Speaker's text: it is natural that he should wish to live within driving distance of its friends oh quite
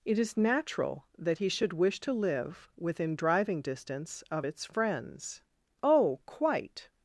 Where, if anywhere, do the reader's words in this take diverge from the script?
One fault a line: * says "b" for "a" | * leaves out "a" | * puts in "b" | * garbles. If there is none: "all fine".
all fine